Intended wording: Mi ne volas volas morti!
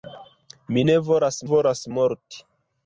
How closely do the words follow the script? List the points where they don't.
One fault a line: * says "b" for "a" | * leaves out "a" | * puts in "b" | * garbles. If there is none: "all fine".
all fine